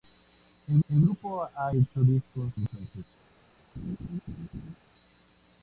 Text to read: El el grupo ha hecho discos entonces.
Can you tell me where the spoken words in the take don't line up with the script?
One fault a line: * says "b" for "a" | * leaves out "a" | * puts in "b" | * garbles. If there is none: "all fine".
all fine